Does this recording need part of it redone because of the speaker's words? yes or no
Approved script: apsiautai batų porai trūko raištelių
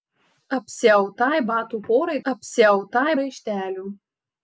yes